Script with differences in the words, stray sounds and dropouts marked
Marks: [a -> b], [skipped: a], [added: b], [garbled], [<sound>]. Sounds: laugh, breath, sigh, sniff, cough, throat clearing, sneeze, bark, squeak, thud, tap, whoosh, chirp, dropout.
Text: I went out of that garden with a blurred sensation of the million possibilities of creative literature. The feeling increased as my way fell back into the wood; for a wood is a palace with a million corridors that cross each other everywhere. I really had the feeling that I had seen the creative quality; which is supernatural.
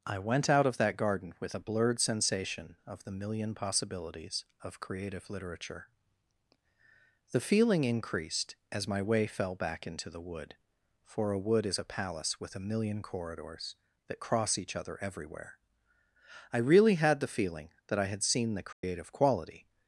I went out of that garden with a blurred sensation of the million possibilities of creative literature. The feeling increased as my way fell back into the wood; for a wood is a palace with a million corridors that cross each other everywhere. I really had the feeling that I had seen the creative [dropout] quality; [skipped: which is supernatural.]